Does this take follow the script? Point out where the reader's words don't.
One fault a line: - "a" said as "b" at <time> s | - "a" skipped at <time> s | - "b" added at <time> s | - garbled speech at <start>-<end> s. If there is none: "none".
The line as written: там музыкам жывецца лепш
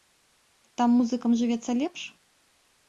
none